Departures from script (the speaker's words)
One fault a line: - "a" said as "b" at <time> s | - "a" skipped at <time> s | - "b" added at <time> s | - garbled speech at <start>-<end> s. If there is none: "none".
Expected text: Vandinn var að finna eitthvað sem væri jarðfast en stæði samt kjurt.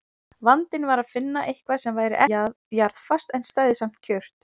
none